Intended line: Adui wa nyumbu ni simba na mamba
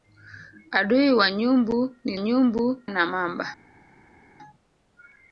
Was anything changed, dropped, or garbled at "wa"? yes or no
no